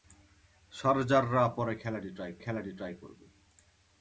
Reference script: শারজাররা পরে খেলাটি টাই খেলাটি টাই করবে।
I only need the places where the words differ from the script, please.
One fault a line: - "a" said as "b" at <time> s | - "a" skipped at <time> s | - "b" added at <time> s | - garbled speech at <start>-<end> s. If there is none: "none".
none